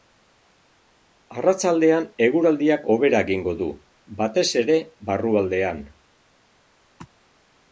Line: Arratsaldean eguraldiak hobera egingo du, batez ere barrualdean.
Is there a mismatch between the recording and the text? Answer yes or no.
no